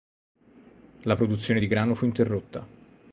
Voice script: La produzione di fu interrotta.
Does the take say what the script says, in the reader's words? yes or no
no